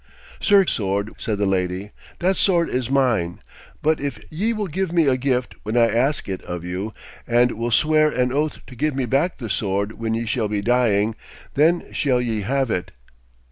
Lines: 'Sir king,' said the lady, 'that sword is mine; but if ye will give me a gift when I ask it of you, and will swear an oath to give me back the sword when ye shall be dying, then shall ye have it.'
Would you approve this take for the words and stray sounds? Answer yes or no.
no